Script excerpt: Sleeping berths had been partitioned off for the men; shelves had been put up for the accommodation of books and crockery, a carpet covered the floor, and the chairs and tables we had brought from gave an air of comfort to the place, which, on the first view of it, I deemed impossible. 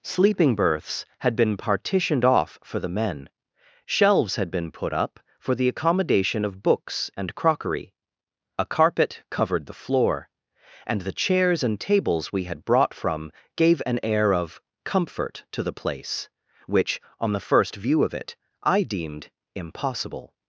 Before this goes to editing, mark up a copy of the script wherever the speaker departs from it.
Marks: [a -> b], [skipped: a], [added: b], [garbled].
Sleeping berths had been partitioned off for the men; shelves had been put up for the accommodation of books and crockery, a carpet covered the floor, and the chairs and tables we had brought from gave an air of comfort to the place, which, on the first view of it, I deemed impossible.